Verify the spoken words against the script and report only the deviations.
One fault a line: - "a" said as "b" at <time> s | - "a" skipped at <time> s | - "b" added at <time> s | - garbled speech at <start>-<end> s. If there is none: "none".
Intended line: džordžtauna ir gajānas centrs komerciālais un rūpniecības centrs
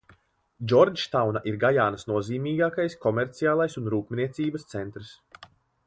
- "centrs" said as "nozīmīgākais" at 2.1 s